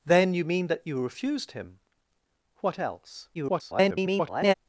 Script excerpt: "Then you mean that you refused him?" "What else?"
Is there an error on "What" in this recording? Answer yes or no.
no